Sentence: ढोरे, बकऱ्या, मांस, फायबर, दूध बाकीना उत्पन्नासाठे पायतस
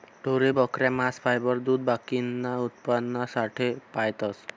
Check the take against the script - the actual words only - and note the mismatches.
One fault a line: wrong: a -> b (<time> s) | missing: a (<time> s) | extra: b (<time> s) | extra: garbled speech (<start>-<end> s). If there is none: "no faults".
no faults